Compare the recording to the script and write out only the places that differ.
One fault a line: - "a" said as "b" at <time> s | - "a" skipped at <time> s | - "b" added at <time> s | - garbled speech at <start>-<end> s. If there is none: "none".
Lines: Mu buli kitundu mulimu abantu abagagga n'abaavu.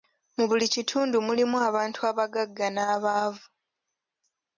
none